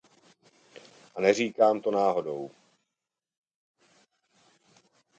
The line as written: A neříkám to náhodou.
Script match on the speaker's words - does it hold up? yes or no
yes